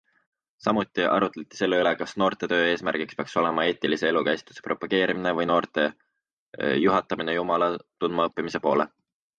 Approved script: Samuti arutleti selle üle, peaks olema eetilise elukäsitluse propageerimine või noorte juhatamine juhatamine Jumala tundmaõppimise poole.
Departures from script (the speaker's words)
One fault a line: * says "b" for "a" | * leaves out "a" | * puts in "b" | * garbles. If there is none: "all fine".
* puts in "kas noortetöö eesmärgiks"
* leaves out "juhatamine"